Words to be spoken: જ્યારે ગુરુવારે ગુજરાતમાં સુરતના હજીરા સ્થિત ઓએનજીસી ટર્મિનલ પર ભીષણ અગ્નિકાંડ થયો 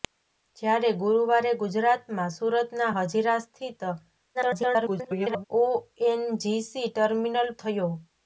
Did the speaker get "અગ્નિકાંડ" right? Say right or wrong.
wrong